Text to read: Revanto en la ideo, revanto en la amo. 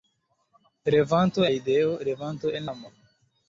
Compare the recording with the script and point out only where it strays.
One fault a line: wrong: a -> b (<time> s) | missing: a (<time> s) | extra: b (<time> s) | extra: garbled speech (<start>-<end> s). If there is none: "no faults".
missing: en la (1.4 s)
missing: la (2.7 s)